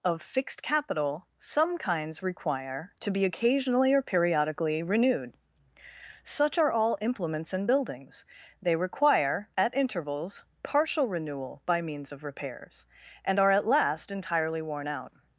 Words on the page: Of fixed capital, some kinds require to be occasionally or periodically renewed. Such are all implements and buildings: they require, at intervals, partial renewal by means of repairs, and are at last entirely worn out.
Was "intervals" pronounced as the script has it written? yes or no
yes